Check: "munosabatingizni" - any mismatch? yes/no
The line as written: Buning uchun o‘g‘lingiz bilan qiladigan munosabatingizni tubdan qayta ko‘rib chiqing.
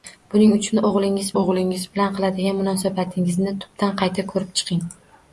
no